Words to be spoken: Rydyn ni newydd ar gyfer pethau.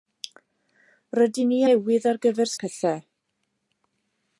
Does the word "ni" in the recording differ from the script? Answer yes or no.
no